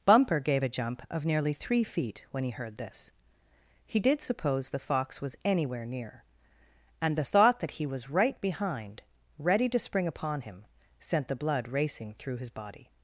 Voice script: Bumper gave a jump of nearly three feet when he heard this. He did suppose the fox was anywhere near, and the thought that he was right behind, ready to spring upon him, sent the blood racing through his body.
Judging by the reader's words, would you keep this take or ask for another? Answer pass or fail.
pass